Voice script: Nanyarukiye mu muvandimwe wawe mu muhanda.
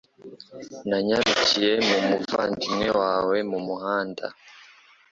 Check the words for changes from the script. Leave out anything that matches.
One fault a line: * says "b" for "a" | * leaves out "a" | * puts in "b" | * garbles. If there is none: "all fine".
all fine